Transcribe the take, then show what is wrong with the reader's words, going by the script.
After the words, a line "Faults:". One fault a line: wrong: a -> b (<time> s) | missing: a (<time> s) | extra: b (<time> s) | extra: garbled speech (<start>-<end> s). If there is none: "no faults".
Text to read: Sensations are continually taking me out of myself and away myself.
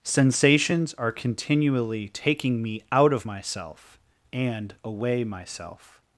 Sensations are continually taking me out of myself and away myself.
Faults:
no faults